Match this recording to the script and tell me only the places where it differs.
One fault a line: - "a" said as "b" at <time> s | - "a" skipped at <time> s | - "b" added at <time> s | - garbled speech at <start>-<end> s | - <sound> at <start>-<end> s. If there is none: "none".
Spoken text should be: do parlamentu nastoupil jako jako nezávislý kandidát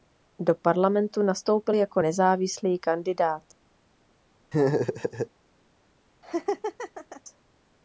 - "jako" skipped at 2.0 s
- laugh at 4.5-5.3 s
- laugh at 6.2-7.2 s